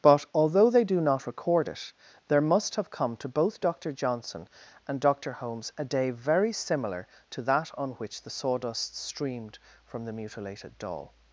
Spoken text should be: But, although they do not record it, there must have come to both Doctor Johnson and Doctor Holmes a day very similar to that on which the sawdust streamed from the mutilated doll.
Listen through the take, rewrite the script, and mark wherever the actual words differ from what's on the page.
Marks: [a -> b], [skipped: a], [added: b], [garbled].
But, although they do not record it, there must have come to both Doctor Johnson and Doctor Holmes a day very similar to that on which the sawdust streamed from the mutilated doll.